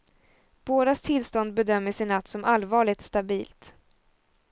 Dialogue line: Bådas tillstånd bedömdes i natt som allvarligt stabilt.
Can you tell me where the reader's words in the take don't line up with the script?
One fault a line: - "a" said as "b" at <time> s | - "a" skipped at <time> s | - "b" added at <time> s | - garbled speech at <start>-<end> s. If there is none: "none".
none